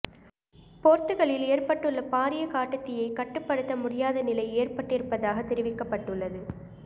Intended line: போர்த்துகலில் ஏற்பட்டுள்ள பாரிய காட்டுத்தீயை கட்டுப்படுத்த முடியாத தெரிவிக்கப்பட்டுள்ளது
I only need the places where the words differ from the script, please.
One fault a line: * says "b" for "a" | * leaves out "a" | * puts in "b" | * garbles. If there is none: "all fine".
* puts in "நிலை ஏற்பட்டிருப்பதாக"